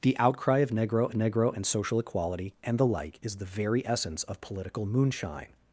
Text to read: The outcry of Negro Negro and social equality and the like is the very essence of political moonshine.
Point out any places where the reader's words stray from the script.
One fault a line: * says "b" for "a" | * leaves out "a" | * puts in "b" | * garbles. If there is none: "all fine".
all fine